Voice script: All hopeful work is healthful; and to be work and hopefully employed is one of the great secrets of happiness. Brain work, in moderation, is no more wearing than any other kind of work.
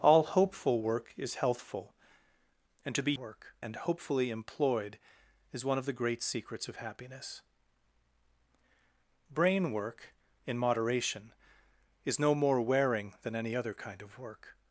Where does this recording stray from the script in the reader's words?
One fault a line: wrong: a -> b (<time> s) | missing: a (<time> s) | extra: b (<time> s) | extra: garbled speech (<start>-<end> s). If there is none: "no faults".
no faults